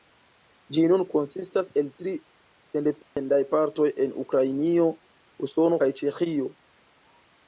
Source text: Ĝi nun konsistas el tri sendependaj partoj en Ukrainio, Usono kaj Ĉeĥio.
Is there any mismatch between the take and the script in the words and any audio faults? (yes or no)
yes